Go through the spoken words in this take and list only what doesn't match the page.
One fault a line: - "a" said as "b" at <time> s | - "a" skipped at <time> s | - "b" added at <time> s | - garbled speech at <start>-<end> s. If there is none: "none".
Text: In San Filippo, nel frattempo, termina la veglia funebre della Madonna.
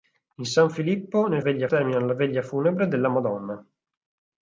- "frattempo" said as "veglia" at 1.4 s